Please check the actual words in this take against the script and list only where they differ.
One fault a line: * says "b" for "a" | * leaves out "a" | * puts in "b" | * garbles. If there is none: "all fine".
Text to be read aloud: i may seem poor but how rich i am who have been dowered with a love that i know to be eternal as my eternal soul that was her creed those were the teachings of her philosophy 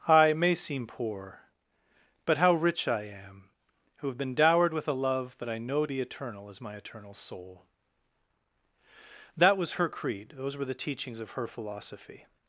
* leaves out "to"